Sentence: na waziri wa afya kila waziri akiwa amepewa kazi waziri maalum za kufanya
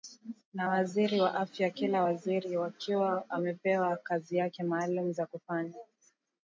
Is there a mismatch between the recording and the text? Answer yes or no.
yes